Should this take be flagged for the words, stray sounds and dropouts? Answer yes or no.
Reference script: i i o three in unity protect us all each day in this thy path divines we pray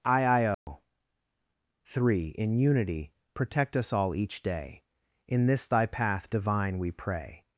yes